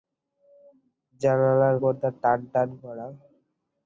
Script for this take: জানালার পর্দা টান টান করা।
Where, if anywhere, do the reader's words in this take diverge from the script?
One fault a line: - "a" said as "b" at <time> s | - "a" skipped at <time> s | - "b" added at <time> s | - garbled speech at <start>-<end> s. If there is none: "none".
none